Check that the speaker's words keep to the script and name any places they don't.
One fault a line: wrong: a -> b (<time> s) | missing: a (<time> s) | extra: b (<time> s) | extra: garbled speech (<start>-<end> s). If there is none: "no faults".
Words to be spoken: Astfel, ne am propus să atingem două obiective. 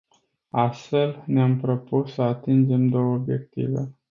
no faults